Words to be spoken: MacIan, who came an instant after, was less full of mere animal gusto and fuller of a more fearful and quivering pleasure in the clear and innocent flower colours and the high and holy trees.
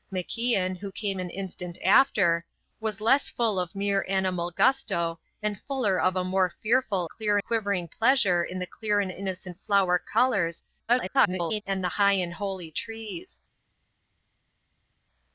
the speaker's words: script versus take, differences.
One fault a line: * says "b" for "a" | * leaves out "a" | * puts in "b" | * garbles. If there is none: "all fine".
* says "clear" for "and"
* garbles